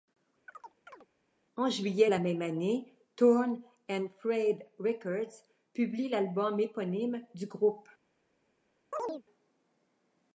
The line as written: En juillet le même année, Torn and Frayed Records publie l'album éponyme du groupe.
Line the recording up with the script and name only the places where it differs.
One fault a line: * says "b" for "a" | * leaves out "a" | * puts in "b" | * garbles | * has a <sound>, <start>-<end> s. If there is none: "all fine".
* has a chirp, 0.5-1.1 s
* says "la" for "le"
* has a chirp, 8.9-9.2 s